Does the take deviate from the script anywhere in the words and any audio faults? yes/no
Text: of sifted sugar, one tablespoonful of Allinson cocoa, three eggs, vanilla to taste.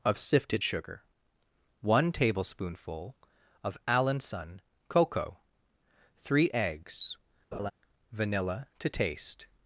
yes